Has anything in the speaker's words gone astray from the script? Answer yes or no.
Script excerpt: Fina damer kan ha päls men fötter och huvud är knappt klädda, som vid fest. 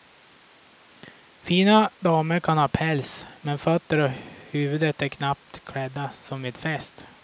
no